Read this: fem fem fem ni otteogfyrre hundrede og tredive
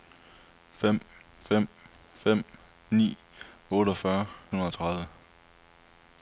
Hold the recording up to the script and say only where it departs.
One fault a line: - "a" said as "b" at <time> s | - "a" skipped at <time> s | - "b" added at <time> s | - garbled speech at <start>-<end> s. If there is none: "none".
none